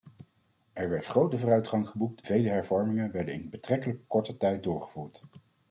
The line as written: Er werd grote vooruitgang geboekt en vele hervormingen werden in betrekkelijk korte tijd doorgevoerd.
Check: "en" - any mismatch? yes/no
yes